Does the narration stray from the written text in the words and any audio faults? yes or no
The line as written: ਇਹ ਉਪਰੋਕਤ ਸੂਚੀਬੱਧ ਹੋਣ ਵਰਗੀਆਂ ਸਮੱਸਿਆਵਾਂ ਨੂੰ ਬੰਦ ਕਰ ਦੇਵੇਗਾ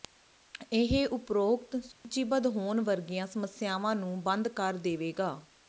yes